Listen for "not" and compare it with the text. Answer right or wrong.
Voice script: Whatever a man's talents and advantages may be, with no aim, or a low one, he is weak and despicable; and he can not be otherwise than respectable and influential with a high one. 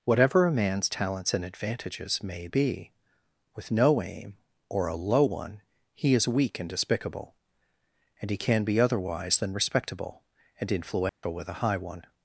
wrong